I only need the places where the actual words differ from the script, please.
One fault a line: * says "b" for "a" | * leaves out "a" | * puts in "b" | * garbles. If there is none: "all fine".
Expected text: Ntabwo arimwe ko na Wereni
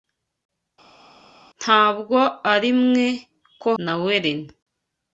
all fine